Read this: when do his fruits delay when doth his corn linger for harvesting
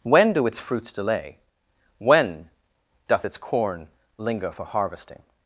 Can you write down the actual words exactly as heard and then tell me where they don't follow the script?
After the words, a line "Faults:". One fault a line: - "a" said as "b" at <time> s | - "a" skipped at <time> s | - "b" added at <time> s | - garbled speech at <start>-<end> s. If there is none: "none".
when do its fruits delay when doth its corn linger for harvesting
Faults:
- "his" said as "its" at 0.5 s
- "his" said as "its" at 3.2 s